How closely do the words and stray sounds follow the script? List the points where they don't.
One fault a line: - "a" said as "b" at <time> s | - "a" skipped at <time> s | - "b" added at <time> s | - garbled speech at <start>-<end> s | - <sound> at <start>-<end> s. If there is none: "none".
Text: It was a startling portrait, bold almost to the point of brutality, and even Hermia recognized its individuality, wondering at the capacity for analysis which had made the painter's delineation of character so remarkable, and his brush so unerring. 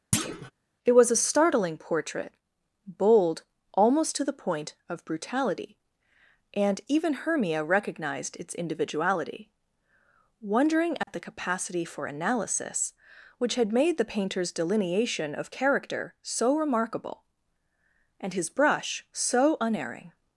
- thud at 0.1-0.5 s
- dropout at 11.0-11.1 s